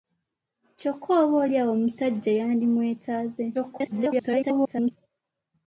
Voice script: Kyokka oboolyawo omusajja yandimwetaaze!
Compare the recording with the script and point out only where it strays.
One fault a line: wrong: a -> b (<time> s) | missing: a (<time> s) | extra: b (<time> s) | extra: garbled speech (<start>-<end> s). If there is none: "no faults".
extra: garbled speech (3.5-4.9 s)